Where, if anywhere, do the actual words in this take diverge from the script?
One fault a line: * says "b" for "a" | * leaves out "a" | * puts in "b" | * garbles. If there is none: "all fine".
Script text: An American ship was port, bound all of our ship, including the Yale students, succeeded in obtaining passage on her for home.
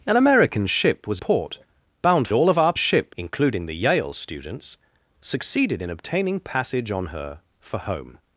all fine